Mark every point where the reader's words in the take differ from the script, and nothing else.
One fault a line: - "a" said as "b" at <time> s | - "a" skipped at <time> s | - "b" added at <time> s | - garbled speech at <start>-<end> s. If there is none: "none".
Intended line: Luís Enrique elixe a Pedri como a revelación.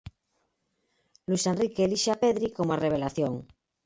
none